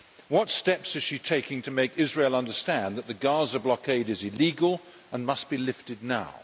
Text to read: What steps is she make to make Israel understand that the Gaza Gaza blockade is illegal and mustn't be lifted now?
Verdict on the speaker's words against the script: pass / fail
fail